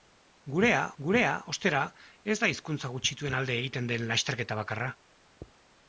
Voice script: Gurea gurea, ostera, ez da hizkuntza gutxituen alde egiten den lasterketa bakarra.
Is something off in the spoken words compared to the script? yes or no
no